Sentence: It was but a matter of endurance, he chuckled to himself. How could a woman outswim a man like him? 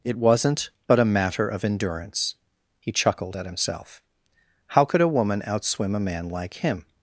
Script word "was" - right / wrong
wrong